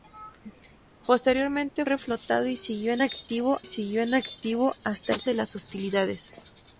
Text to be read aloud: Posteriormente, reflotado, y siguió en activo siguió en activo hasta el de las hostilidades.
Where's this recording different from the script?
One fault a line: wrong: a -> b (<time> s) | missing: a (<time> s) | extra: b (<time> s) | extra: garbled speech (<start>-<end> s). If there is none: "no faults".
no faults